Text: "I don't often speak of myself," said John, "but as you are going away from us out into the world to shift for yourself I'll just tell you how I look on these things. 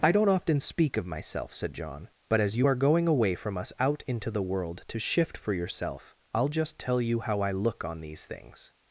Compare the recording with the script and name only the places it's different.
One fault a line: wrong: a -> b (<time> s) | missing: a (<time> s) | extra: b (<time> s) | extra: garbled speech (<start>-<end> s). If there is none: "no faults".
no faults